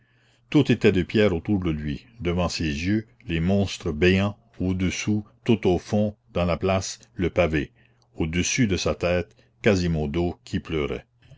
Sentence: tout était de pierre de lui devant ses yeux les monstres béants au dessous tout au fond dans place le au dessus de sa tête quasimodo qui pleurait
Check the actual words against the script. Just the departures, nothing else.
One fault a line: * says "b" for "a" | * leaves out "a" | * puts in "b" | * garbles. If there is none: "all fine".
* puts in "autour"
* puts in "la"
* puts in "pavé"